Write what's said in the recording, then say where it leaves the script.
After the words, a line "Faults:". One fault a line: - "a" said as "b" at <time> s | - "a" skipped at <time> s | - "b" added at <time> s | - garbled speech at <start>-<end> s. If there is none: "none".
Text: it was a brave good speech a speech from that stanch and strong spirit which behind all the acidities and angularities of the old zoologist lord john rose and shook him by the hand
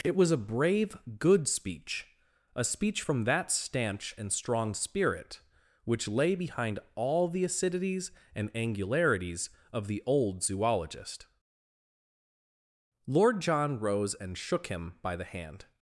it was a brave good speech a speech from that stanch and strong spirit which lay behind all the acidities and angularities of the old zoologist lord john rose and shook him by the hand
Faults:
- "lay" added at 6.1 s